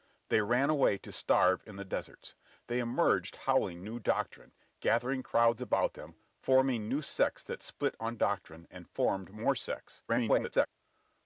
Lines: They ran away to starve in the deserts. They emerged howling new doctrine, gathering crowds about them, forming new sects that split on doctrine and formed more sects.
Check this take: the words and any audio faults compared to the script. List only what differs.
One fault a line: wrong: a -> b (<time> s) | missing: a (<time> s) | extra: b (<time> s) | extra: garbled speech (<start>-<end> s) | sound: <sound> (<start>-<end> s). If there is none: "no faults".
extra: garbled speech (10.1-10.7 s)